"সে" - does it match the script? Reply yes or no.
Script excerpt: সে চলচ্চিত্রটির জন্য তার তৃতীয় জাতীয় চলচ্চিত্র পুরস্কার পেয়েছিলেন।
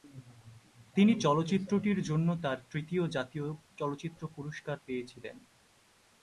no